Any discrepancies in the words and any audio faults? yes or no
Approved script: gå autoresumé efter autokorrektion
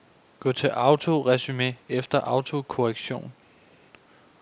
yes